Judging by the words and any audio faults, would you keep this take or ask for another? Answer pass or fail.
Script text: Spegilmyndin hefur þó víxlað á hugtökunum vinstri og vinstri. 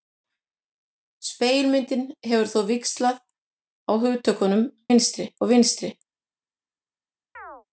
fail